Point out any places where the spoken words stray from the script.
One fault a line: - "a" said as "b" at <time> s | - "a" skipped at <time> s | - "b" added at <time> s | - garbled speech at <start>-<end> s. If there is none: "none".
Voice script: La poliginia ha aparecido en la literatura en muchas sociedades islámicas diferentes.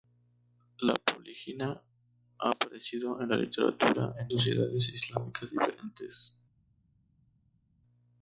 - "muchas" skipped at 4.3 s